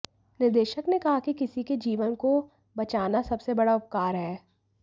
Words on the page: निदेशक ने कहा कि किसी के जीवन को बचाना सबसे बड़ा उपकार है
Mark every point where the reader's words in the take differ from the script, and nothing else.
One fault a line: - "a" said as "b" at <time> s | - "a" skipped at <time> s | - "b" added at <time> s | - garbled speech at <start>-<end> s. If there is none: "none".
none